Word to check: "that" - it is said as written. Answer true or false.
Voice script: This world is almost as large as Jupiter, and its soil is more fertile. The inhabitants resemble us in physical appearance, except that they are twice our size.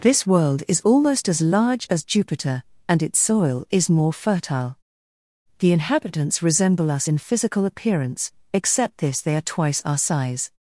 false